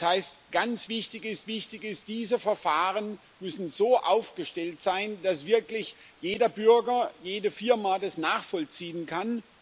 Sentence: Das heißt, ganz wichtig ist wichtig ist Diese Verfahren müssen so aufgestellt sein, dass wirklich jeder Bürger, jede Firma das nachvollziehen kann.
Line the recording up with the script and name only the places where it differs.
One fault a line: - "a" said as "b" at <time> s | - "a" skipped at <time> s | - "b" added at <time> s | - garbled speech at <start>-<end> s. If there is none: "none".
none